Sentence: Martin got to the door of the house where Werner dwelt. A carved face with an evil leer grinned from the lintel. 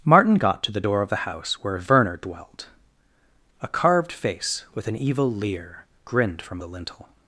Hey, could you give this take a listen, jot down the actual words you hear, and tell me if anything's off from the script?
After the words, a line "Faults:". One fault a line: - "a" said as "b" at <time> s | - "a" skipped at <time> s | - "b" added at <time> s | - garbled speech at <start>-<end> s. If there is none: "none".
Martin got to the door of the house where Werner dwelt. A carved face with an evil leer grinned from the lintel.
Faults:
none